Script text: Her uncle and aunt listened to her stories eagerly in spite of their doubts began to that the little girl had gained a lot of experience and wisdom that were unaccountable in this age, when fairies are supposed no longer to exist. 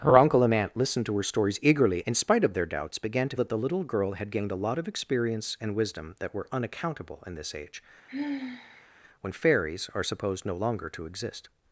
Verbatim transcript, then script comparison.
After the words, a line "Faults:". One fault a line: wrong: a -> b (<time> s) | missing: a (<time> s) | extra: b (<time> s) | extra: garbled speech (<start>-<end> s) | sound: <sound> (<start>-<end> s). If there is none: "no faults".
Her uncle and aunt listened to her stories eagerly in spite of their doubts began to that the little girl had gained a lot of experience and wisdom that were unaccountable in this age, when fairies are supposed no longer to exist.
Faults:
sound: sigh (8.1-8.9 s)